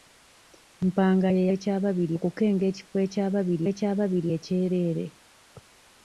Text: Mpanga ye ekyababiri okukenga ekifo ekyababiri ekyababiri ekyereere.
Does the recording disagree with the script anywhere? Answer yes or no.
no